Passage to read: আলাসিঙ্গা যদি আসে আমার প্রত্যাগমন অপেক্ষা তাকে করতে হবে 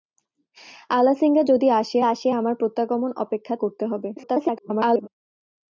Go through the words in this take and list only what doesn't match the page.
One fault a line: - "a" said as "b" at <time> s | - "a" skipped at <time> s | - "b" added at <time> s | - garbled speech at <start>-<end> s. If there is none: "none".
- "আসে" added at 2.0 s
- "তাকে" skipped at 3.5 s
- garbled speech at 4.2-5.1 s